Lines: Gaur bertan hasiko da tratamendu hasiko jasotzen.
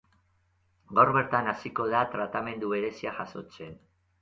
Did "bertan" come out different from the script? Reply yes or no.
no